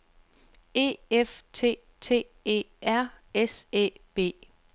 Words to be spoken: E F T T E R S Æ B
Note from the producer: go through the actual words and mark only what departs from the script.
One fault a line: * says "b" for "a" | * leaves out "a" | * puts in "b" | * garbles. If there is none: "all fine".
all fine